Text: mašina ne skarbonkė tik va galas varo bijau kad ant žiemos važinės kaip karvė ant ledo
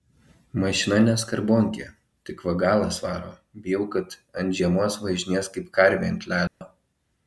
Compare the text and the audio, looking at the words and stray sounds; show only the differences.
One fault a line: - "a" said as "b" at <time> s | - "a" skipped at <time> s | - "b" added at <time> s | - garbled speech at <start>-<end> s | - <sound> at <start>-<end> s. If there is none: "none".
- dropout at 6.5-6.6 s